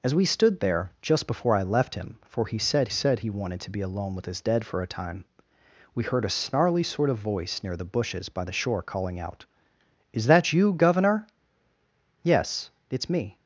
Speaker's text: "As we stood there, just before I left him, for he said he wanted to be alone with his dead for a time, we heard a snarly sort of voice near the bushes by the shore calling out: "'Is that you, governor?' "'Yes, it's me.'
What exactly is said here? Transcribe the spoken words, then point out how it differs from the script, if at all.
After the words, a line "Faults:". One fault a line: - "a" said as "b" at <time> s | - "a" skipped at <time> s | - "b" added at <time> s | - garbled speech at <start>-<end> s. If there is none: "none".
"As we stood there, just before I left him, for he said said he wanted to be alone with his dead for a time, we heard a snarly sort of voice near the bushes by the shore calling out: "'Is that you, governor?' "'Yes, it's me.'
Faults:
- "said" added at 2.9 s